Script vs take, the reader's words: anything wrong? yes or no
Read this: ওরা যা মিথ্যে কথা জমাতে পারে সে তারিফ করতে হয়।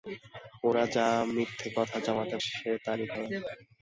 yes